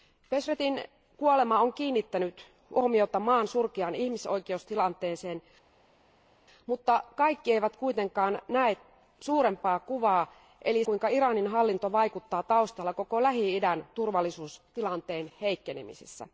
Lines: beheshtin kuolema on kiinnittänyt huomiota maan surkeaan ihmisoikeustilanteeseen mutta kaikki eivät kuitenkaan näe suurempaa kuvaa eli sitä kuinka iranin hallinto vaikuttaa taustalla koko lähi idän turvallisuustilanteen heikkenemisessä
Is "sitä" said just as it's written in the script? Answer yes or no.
no